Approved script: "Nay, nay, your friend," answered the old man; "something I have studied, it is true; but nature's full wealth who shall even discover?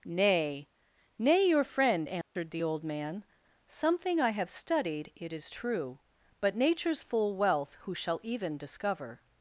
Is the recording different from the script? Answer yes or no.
no